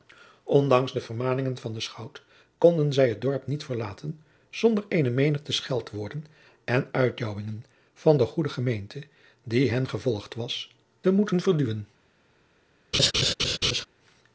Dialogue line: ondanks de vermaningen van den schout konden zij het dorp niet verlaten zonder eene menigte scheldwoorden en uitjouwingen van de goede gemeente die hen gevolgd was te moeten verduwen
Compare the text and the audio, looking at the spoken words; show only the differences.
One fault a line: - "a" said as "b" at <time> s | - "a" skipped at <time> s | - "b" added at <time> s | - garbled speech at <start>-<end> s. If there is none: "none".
none